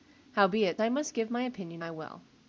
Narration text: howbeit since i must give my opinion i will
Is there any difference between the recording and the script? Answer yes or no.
yes